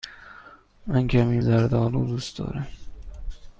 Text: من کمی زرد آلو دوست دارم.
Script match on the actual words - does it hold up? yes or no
yes